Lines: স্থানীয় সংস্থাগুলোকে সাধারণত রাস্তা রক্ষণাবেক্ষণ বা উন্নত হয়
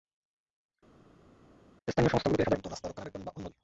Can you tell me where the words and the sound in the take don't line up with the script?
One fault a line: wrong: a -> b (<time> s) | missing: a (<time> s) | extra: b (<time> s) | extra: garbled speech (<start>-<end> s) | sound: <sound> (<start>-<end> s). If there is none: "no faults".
no faults